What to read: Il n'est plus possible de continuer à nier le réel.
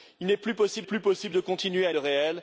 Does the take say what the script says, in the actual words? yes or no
no